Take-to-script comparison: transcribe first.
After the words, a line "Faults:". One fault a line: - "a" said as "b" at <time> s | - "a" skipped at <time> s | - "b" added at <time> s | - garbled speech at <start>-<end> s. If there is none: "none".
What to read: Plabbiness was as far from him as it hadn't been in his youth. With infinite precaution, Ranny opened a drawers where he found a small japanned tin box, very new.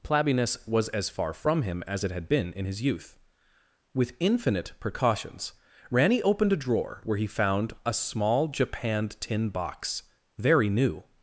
Plabbiness was as far from him as it had been in his youth. With infinite precautions, Ranny opened a drawer where he found a small japanned tin box, very new.
Faults:
- "hadn't" said as "had" at 2.1 s
- "precaution" said as "precautions" at 4.8 s
- "drawers" said as "drawer" at 6.6 s